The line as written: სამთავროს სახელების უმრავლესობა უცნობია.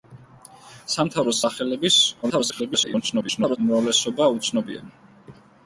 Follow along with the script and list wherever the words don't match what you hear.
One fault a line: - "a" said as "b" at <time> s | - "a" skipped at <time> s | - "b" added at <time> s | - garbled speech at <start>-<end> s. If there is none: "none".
- garbled speech at 2.2-3.6 s